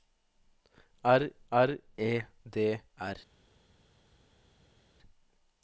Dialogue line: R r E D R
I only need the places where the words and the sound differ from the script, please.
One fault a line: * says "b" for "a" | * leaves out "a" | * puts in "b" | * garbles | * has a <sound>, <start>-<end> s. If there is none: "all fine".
all fine